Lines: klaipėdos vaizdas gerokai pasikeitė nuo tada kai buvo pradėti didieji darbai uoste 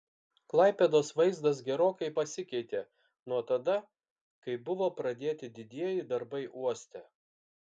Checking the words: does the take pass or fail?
pass